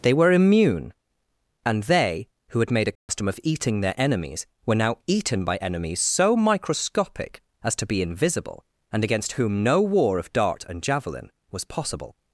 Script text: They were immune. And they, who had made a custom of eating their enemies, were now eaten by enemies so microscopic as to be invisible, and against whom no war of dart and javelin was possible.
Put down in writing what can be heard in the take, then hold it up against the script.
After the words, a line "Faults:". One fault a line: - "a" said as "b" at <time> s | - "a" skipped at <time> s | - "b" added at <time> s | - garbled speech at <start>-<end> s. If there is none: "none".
They were immune. And they, who had made a custom of eating their enemies, were now eaten by enemies so microscopic as to be invisible, and against whom no war of dart and javelin was possible.
Faults:
none